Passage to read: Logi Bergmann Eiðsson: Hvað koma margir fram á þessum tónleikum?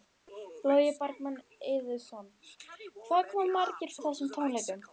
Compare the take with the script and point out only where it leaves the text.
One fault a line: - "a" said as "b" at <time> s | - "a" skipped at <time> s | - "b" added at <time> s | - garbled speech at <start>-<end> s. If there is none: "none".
- "fram" skipped at 4.0 s